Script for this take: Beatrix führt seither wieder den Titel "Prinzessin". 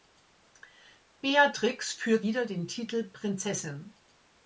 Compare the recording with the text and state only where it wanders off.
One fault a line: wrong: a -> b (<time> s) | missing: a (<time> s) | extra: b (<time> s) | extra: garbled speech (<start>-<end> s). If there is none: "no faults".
missing: seither (2.2 s)